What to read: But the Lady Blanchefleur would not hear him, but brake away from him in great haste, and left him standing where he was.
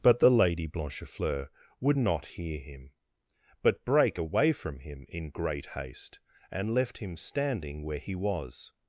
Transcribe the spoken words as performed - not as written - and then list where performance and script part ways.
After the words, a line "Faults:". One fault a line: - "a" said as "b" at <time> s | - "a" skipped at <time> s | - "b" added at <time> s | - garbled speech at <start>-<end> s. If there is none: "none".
But the Lady Blanchefleur would not hear him, but brake away from him in great haste, and left him standing where he was.
Faults:
none